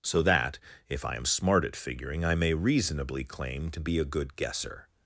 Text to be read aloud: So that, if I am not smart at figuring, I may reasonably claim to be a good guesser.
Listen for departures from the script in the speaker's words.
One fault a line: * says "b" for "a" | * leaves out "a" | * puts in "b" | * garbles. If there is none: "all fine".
* leaves out "not"